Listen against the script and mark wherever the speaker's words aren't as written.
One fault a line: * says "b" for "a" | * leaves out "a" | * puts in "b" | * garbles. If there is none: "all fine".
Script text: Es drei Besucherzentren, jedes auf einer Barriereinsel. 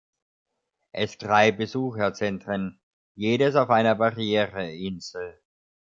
all fine